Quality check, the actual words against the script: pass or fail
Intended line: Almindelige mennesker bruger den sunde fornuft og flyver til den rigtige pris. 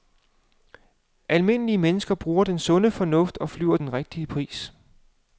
fail